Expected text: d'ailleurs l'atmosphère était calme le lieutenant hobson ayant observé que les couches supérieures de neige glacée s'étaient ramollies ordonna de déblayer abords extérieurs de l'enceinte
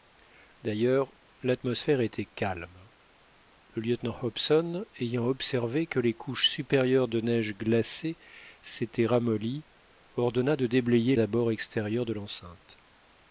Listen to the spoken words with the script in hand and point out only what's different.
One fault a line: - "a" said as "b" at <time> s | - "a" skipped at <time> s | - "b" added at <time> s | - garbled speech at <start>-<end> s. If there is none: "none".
none